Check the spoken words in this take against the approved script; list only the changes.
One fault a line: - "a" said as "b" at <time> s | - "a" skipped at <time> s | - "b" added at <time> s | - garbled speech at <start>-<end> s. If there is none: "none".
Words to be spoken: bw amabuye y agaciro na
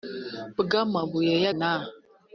- "agaciro" skipped at 1.5 s